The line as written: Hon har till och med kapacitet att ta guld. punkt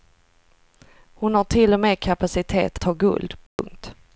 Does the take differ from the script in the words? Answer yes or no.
yes